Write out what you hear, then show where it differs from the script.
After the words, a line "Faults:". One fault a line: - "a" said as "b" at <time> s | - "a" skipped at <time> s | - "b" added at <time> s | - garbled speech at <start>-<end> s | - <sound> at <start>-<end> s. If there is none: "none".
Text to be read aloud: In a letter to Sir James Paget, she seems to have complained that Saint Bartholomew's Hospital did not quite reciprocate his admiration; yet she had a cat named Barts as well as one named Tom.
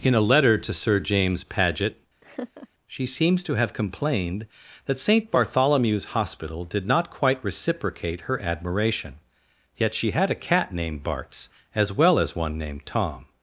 In a letter to Sir James Paget, she seems to have complained that Saint Bartholomew's Hospital did not quite reciprocate her admiration; yet she had a cat named Barts as well as one named Tom.
Faults:
- laugh at 2.2-2.7 s
- "his" said as "her" at 8.2 s